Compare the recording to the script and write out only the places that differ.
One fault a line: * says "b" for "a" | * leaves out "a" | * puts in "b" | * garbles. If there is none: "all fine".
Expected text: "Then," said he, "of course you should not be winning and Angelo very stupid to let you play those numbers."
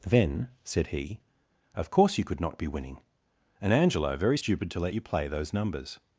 * says "could" for "should"